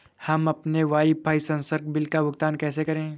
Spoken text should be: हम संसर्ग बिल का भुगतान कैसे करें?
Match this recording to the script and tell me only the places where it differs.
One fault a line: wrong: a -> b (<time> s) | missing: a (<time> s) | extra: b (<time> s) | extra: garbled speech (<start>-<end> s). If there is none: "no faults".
extra: अपने वाईफाई (0.5 s)